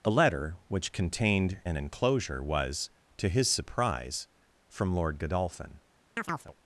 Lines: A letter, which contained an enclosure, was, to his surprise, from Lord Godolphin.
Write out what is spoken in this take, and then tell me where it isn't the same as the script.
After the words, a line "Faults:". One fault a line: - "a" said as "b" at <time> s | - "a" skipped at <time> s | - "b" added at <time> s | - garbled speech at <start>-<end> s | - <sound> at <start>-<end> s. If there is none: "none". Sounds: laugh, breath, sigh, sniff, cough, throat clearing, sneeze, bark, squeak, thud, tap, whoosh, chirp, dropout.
A letter, which contained an enclosure, was, to his surprise, from Lord Godolphin.
Faults:
- chirp at 6.2-6.6 s